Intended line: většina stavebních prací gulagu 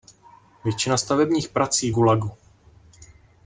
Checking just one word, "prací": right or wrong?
right